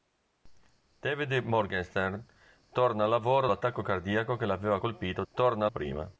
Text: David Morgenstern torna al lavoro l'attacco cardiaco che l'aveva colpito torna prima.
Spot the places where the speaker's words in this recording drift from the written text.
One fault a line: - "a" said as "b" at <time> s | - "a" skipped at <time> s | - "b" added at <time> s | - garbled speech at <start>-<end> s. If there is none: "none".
none